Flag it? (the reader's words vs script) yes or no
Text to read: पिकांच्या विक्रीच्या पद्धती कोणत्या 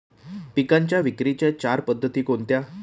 yes